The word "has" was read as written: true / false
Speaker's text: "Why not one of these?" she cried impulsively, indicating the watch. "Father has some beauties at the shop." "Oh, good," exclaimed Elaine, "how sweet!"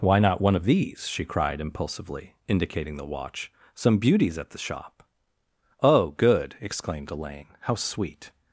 false